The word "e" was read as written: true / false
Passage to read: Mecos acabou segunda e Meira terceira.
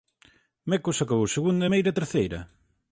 true